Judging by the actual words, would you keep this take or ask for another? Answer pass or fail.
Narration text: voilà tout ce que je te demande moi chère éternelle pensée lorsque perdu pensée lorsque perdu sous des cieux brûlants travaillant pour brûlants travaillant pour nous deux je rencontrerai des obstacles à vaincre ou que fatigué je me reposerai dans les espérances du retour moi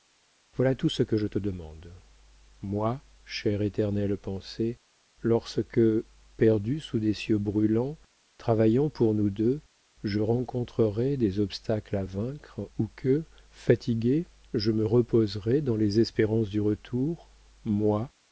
fail